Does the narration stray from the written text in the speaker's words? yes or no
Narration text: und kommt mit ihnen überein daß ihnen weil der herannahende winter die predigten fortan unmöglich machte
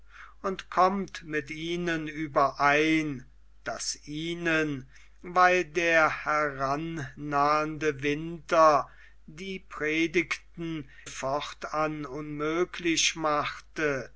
no